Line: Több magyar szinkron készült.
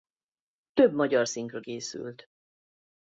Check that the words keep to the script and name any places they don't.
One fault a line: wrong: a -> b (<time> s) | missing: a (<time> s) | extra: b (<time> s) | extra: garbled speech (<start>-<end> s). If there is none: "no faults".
no faults